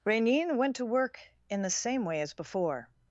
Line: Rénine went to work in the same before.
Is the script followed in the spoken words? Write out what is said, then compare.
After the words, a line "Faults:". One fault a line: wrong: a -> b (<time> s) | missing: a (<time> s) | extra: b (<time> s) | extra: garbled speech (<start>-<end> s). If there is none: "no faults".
Rénine went to work in the same way as before.
Faults:
extra: way as (2.0 s)